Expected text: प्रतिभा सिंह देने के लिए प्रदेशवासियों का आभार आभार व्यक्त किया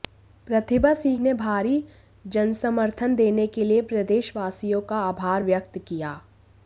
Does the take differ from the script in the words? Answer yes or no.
yes